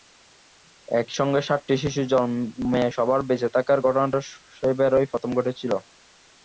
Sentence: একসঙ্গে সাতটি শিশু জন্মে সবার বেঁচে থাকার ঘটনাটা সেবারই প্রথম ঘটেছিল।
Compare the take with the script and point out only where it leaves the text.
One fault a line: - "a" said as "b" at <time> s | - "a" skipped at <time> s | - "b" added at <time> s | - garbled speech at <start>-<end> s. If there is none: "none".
none